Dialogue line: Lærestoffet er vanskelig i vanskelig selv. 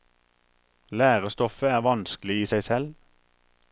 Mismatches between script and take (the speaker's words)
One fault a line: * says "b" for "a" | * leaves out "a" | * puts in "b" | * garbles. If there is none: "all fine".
* says "seg" for "vanskelig"